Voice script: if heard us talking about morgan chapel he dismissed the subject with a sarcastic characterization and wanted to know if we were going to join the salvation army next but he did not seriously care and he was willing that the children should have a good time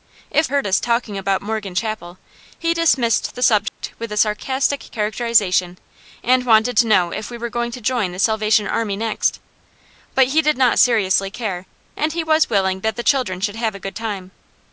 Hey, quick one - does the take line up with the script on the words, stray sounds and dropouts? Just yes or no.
no